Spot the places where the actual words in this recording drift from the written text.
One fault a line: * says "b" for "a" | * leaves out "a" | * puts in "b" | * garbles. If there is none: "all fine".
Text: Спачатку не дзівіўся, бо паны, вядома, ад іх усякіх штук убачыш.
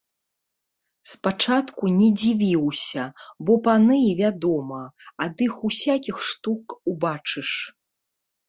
all fine